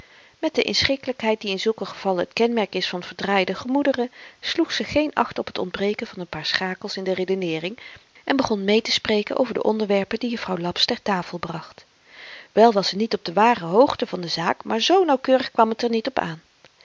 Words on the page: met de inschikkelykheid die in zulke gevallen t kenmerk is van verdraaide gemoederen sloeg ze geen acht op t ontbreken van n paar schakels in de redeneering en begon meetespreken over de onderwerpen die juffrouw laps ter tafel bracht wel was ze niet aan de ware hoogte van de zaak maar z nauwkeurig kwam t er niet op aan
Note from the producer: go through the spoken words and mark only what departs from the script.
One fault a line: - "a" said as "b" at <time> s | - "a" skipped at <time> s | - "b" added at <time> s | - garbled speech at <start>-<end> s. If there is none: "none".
- "aan" said as "op" at 13.1 s